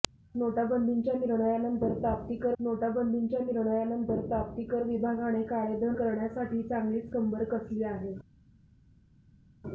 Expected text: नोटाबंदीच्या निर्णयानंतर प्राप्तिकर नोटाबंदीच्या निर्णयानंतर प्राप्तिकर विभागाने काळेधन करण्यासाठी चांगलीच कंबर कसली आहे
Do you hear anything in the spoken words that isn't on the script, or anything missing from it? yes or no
no